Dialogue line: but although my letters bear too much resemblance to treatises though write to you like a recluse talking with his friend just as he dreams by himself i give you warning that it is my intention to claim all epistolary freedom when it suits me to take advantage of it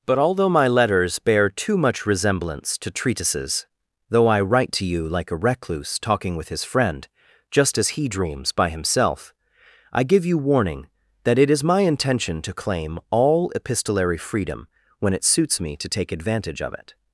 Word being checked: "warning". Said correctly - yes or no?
yes